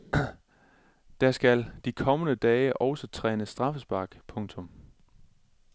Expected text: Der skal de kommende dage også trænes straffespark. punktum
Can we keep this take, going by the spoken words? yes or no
yes